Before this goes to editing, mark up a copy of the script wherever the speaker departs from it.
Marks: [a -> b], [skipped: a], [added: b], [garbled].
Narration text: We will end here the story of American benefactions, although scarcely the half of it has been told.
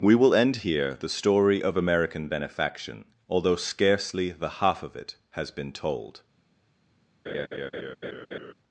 We will end here the story of American [benefactions, -> benefaction] although scarcely the half of it has been told.